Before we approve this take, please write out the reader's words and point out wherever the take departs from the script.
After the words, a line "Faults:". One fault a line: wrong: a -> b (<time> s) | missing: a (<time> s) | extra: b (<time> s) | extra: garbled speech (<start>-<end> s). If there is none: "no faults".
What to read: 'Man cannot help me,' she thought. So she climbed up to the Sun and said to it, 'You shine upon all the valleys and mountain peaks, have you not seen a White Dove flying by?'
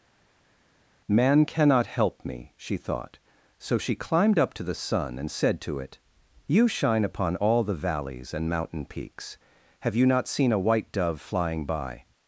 'Man cannot help me,' she thought. So she climbed up to the Sun and said to it, 'You shine upon all the valleys and mountain peaks, have you not seen a White Dove flying by?'
Faults:
no faults